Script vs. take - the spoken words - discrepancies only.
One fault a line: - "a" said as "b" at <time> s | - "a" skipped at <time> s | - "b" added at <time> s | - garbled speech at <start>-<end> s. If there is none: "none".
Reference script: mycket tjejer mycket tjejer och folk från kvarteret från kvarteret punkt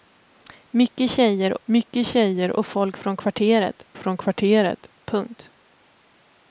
none